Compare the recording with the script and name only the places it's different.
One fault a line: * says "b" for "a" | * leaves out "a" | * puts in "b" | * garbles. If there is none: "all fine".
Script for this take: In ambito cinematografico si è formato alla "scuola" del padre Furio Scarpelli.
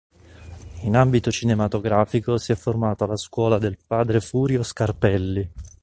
all fine